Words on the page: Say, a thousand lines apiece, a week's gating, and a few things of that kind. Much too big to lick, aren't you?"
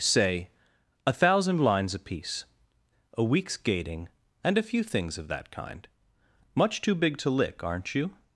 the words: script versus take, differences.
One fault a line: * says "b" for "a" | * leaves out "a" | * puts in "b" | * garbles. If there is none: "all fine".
all fine